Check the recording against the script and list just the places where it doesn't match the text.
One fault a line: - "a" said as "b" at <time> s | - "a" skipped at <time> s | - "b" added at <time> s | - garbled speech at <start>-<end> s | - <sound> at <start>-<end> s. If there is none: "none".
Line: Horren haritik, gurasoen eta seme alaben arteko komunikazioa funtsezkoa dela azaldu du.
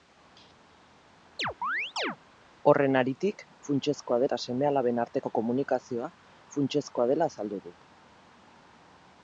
- chirp at 1.4-2.2 s
- "gurasoen" said as "funtsezkoa" at 3.7 s